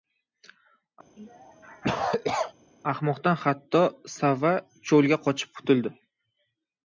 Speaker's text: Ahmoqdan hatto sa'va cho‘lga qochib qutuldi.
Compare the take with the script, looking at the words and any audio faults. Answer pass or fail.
fail